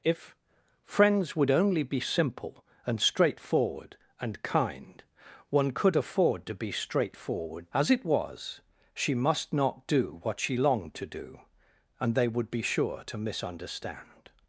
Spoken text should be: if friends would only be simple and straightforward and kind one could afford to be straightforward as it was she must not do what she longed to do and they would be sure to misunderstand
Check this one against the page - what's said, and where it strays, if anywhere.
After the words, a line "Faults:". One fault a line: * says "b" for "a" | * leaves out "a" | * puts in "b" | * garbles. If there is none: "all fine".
if friends would only be simple and straightforward and kind one could afford to be straightforward as it was she must not do what she longed to do and they would be sure to misunderstand
Faults:
all fine